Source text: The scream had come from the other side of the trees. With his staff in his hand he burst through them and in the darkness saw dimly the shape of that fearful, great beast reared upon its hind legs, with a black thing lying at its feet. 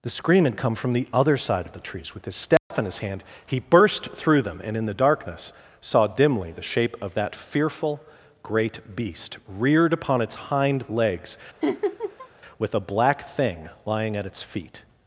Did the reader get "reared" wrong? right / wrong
right